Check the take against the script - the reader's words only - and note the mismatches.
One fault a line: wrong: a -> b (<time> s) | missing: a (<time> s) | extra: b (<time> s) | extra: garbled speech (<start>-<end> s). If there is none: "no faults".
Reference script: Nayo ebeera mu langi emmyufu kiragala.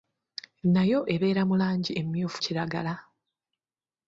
no faults